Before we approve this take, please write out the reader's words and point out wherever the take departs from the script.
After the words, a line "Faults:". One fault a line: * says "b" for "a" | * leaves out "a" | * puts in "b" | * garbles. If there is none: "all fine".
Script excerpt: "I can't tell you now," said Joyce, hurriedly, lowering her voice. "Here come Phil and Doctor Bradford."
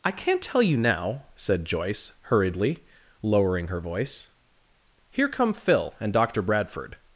"I can't tell you now," said Joyce, hurriedly, lowering her voice. "Here come Phil and Doctor Bradford."
Faults:
all fine